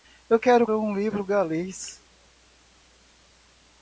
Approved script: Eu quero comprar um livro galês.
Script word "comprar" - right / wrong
wrong